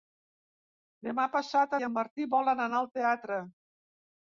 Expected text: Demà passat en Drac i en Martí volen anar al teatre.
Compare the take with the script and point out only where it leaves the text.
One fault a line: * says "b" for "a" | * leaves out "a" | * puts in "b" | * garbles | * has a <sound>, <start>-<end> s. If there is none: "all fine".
* leaves out "en Drac"